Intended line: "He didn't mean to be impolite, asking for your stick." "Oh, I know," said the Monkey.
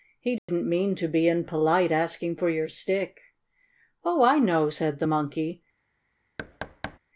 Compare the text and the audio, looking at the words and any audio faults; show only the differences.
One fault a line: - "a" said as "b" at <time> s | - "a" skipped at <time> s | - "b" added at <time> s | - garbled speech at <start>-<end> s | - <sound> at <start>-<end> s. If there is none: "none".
- dropout at 0.4-0.5 s
- thud at 6.4-7.0 s